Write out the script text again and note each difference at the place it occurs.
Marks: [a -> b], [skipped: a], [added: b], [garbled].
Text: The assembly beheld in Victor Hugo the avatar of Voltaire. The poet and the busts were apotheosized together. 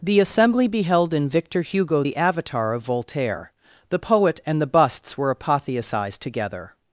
The assembly beheld in Victor Hugo the avatar of Voltaire. The poet and the busts were apotheosized together.